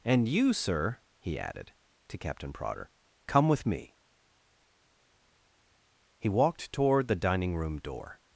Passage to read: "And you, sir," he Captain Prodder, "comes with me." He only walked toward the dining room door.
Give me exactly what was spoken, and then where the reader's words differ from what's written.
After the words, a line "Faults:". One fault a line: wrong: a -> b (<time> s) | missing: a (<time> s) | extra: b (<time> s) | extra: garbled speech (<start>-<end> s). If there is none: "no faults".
"And you, sir," he added, to Captain Prodder, "come with me." He walked toward the dining room door.
Faults:
extra: added to (1.4 s)
wrong: comes -> come (3.3 s)
missing: only (6.3 s)